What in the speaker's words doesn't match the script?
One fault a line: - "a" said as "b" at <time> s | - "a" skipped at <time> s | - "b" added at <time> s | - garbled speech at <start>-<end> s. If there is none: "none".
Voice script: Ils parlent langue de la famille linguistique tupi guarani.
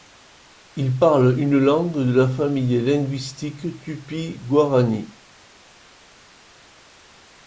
- "une" added at 1.4 s